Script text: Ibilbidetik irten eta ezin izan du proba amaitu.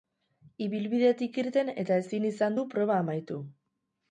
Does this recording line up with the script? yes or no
yes